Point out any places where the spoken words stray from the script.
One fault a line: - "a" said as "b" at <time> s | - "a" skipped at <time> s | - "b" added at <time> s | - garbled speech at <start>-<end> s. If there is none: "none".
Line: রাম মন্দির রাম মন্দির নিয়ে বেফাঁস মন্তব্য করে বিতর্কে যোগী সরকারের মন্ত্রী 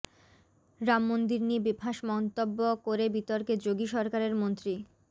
- "রাম মন্দির" skipped at 1.4 s